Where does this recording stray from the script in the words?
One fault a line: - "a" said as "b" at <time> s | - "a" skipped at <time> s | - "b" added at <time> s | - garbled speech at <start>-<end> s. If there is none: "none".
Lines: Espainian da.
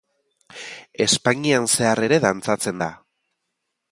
- "zehar ere dantzatzen" added at 1.8 s